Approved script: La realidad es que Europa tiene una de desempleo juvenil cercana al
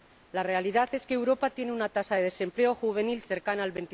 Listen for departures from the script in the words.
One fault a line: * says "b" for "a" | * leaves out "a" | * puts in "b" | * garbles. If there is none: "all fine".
* puts in "tasa"